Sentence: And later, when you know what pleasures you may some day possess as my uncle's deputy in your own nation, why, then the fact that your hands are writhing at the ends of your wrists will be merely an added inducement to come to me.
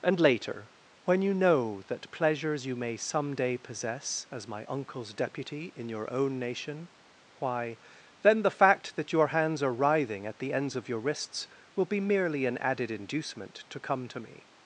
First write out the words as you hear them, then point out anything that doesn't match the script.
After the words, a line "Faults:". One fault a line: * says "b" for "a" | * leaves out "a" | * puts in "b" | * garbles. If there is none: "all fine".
And later, when you know that pleasures you may some day possess as my uncle's deputy in your own nation, why, then the fact that your hands are writhing at the ends of your wrists will be merely an added inducement to come to me.
Faults:
* says "that" for "what"